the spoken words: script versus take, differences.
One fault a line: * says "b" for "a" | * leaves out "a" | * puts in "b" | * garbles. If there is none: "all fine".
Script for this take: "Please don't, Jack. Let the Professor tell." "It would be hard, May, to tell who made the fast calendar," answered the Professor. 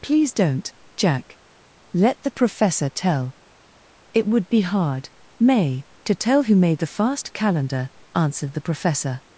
all fine